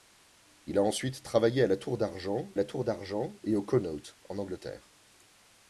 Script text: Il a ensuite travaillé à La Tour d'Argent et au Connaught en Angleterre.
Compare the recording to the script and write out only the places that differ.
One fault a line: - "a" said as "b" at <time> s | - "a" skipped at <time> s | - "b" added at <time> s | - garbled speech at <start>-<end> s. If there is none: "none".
- "La Tour d'Argent" added at 2.6 s